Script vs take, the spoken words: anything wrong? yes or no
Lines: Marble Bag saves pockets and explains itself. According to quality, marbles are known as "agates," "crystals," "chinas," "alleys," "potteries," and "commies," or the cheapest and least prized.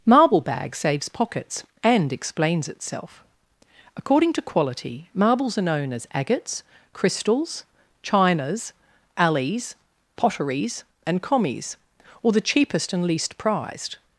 no